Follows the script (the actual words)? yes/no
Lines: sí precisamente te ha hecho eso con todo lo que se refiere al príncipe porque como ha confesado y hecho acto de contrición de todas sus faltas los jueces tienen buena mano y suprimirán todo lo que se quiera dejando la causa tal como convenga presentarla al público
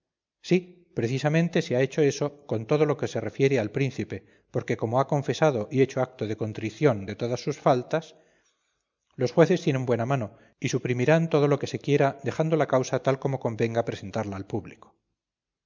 no